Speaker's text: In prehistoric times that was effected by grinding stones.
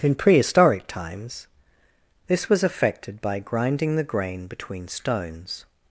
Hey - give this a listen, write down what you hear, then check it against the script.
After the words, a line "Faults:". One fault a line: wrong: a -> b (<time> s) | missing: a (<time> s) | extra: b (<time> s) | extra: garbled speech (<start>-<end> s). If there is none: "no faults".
In prehistoric times this was effected by grinding the grain between stones.
Faults:
wrong: that -> this (2.2 s)
extra: the grain between (4.0 s)